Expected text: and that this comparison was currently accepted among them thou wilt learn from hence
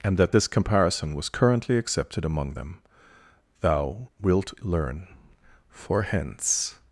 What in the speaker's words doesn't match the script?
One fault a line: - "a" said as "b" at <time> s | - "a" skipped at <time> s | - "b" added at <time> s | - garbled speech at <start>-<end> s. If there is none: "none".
- "from" said as "for" at 5.7 s